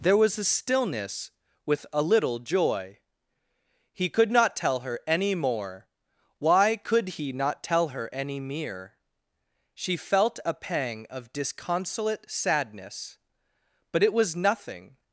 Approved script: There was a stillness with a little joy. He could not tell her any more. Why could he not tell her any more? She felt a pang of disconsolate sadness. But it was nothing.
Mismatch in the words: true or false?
true